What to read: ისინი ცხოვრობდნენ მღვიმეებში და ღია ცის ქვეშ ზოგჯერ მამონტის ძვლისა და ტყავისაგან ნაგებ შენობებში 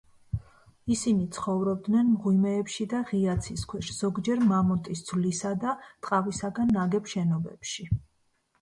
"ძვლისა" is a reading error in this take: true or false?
false